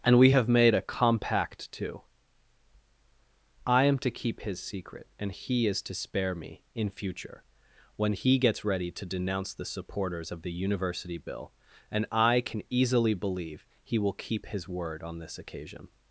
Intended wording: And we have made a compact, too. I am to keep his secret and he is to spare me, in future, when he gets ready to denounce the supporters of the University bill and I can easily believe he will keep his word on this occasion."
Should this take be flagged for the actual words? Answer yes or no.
no